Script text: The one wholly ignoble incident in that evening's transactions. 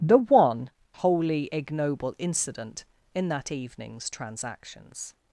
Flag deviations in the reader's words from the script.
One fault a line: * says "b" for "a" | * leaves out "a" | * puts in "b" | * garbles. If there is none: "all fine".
all fine